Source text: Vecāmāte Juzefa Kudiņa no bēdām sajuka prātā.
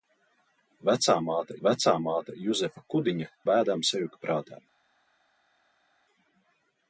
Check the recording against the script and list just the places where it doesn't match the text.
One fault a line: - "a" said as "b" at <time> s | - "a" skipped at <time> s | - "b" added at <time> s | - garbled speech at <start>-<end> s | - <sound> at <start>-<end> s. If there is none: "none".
- "vecāmāte" added at 1.7 s
- "no" skipped at 3.3 s